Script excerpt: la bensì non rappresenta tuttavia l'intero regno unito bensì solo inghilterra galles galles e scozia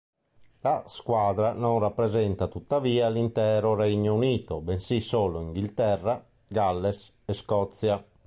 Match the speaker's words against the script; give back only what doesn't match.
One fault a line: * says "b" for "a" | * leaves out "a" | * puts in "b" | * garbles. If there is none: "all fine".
* says "squadra" for "bensì"
* leaves out "galles"